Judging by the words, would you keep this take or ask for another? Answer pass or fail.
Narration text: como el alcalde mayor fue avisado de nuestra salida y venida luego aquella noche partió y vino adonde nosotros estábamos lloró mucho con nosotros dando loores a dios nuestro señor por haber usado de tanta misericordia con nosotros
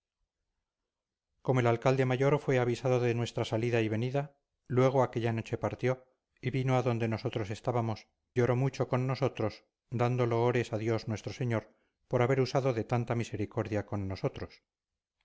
pass